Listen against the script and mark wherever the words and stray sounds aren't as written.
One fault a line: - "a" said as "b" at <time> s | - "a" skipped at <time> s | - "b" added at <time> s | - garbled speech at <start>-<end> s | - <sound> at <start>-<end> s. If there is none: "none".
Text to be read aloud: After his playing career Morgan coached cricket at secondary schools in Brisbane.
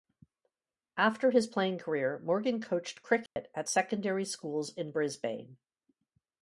- dropout at 3.3-3.4 s